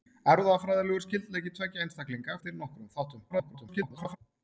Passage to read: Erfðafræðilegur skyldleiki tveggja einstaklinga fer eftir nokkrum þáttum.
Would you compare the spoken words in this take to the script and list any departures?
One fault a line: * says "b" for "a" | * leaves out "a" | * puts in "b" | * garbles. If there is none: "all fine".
* leaves out "fer"
* garbles